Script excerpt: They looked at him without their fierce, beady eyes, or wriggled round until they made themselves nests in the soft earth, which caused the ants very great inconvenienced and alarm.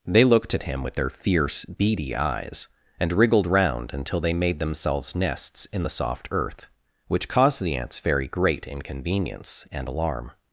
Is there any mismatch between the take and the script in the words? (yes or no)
yes